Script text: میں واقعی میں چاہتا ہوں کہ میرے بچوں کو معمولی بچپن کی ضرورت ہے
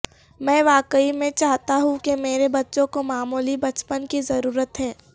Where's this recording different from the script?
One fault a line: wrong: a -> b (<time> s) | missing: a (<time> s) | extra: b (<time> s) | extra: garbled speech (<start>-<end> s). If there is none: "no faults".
no faults